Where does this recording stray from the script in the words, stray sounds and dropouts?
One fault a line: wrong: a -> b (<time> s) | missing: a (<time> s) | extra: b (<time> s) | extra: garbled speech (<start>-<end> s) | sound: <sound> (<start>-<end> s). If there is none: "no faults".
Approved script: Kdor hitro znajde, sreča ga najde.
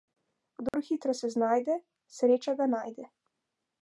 sound: dropout (0.7-0.7 s)
extra: se (1.2 s)